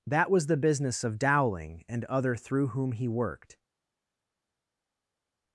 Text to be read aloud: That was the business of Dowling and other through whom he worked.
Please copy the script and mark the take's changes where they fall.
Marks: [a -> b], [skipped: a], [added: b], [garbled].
That was the business of Dowling and other through whom he worked.